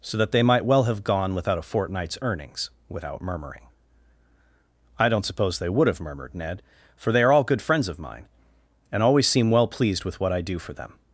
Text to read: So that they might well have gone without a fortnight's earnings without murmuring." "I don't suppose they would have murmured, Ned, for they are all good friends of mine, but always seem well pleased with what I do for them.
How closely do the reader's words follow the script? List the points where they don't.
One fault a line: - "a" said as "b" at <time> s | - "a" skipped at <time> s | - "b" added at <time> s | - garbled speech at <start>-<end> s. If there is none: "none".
- "but" said as "and" at 8.9 s